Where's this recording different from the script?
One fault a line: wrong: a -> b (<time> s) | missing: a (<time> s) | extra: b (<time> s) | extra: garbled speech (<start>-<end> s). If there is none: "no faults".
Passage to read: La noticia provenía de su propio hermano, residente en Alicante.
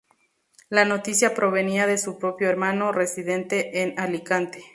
no faults